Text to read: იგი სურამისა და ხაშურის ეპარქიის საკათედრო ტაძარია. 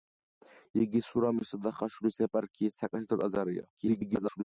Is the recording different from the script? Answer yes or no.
yes